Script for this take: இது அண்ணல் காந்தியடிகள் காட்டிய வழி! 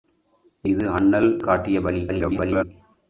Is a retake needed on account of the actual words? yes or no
yes